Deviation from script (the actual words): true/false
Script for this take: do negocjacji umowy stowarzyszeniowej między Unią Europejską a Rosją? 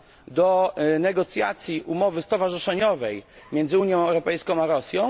false